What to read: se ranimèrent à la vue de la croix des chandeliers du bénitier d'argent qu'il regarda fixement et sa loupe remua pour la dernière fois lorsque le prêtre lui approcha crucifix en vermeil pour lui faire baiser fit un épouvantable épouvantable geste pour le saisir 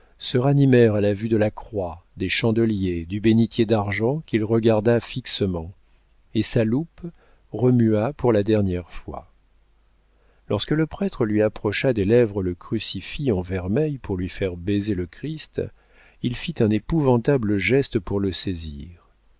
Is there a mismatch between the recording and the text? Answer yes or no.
yes